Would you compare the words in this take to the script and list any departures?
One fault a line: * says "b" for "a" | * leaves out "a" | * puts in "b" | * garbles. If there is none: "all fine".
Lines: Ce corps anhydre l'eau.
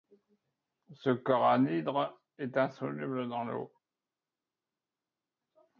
* puts in "est insoluble dans"